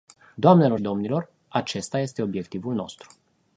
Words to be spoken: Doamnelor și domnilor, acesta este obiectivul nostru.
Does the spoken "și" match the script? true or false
false